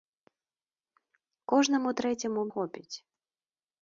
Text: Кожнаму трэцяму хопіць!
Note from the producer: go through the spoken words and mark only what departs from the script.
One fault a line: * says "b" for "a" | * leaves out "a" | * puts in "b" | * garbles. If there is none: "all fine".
all fine